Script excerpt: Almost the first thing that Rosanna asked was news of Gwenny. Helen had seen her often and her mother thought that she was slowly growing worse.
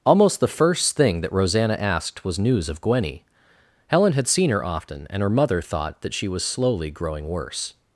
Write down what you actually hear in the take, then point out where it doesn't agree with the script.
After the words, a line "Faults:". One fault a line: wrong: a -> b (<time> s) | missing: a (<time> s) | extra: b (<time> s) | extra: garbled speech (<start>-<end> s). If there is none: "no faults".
Almost the first thing that Rosanna asked was news of Gwenny. Helen had seen her often and her mother thought that she was slowly growing worse.
Faults:
no faults